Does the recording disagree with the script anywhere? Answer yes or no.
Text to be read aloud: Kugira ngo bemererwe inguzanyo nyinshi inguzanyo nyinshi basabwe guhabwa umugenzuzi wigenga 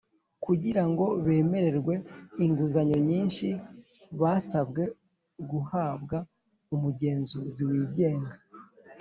yes